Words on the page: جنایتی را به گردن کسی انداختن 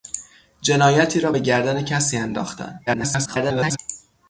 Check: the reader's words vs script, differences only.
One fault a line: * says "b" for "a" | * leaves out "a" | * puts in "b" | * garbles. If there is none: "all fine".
* garbles